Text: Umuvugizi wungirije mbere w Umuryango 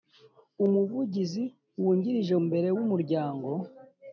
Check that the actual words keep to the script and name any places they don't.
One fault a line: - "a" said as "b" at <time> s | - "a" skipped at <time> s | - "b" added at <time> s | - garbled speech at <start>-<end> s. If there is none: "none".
none